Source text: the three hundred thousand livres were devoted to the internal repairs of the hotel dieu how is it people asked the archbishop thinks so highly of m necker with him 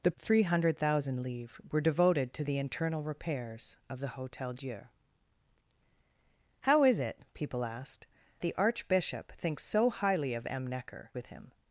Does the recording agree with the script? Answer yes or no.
yes